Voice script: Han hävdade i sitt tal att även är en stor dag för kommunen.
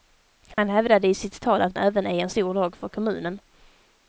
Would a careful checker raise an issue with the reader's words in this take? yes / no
no